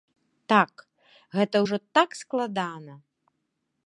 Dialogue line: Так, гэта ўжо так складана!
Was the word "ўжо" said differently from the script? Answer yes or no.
no